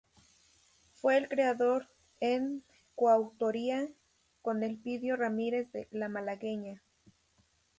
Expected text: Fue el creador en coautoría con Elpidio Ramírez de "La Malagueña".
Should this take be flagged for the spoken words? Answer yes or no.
no